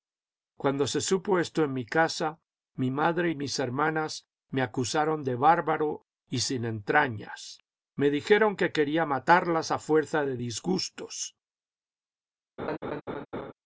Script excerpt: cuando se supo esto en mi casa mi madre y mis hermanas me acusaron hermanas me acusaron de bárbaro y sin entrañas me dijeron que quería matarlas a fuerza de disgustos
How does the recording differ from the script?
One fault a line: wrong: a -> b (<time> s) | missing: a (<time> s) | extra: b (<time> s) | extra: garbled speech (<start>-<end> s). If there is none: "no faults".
missing: hermanas me acusaron (5.2 s)